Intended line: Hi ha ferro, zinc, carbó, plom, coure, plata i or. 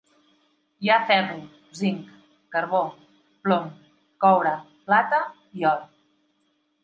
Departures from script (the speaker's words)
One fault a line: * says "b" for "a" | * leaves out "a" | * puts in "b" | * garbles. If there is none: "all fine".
all fine